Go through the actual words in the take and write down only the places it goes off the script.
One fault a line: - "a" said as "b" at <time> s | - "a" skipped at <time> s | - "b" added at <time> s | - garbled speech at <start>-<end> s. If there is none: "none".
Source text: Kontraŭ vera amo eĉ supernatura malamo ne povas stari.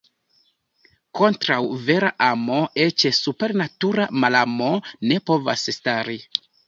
none